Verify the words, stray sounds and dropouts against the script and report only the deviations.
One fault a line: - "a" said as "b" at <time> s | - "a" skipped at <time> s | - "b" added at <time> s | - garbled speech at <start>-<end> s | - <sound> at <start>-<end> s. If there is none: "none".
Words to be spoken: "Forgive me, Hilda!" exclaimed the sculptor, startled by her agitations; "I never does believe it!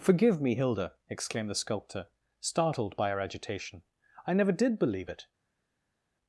- "agitations" said as "agitation" at 3.2 s
- "does" said as "did" at 4.5 s